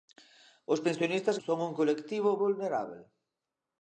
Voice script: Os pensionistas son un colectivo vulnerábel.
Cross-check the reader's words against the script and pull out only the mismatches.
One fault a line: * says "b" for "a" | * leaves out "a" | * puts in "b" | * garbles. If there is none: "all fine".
all fine